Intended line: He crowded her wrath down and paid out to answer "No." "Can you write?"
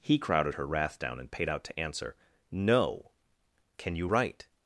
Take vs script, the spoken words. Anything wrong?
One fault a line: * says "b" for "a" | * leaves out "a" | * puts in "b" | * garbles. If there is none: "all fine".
all fine